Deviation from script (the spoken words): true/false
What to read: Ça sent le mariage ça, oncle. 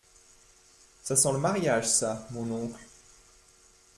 true